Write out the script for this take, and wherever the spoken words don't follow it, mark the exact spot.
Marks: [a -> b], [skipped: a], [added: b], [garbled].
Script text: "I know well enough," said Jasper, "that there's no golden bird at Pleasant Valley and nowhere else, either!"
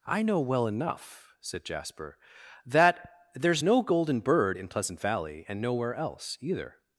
"I know well enough," said Jasper, "that there's no golden bird [at -> in] Pleasant Valley and nowhere else, either!"